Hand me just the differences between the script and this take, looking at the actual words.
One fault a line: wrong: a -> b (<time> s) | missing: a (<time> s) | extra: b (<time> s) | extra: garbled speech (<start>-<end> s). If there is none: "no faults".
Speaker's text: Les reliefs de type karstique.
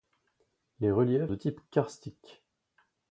no faults